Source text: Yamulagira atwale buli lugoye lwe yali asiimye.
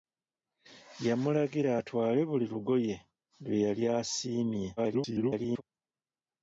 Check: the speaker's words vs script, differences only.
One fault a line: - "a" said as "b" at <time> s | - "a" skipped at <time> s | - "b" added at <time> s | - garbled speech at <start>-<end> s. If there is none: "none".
- garbled speech at 4.8-5.6 s